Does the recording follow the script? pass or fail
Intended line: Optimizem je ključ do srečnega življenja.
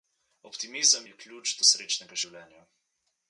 pass